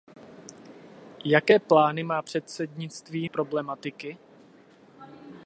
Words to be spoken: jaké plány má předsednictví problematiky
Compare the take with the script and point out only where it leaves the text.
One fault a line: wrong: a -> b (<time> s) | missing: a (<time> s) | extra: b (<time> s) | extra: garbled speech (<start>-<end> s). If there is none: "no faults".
no faults